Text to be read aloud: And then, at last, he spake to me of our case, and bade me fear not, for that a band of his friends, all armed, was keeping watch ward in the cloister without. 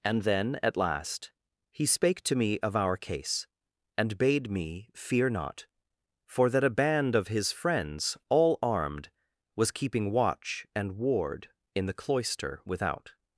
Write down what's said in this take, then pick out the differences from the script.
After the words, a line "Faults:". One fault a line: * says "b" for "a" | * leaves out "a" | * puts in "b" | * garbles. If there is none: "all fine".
And then, at last, he spake to me of our case, and bade me fear not, for that a band of his friends, all armed, was keeping watch and ward in the cloister without.
Faults:
* puts in "and"